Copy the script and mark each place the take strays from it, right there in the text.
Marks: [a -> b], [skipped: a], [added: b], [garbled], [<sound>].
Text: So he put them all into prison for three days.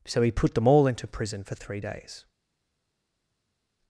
So he put them all into prison for three days.